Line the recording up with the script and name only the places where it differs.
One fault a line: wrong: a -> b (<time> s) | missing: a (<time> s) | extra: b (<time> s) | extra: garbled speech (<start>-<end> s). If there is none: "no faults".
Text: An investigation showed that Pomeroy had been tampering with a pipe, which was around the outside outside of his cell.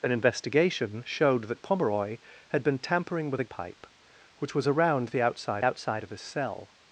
no faults